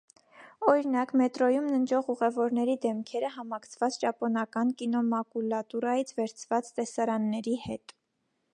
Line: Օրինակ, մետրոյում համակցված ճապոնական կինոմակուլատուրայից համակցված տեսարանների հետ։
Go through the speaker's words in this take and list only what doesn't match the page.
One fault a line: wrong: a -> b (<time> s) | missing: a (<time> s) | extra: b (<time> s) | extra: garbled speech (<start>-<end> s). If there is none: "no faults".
extra: ննջող ուղևորների դեմքերը (1.7 s)
wrong: համակցված -> վերցված (6.2 s)